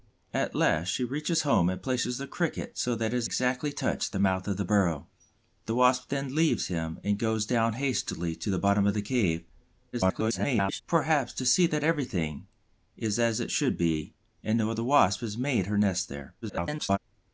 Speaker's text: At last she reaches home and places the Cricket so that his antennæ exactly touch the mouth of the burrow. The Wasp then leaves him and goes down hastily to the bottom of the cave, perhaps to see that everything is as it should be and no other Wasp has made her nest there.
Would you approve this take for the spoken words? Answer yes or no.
no